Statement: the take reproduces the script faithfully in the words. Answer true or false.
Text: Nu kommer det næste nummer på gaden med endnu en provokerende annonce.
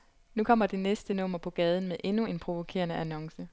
true